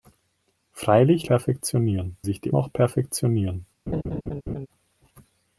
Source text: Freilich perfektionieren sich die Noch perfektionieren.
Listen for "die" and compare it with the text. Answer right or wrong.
right